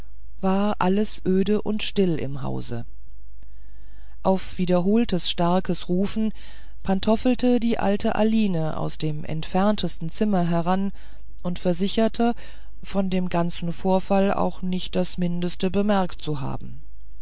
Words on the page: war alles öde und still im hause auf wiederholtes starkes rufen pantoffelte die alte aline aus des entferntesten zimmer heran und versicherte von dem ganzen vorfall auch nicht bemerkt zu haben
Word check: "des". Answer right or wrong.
wrong